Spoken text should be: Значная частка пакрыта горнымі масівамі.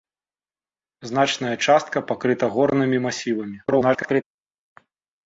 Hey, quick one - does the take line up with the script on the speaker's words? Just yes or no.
no